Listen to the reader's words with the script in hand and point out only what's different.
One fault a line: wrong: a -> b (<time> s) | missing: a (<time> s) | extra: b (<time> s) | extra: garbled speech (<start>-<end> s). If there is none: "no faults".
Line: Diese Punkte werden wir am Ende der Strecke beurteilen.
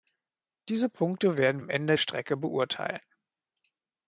missing: wir (1.6 s)
missing: der (2.0 s)